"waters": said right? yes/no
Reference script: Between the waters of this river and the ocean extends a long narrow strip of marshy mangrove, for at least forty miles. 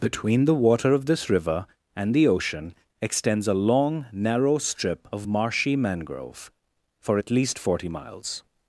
no